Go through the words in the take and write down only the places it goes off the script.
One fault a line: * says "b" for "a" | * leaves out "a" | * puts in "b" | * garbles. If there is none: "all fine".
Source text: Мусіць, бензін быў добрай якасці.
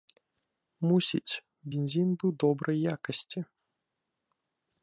all fine